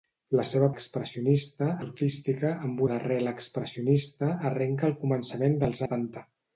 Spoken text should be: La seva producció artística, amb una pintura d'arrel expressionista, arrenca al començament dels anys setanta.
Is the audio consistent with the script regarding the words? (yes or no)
no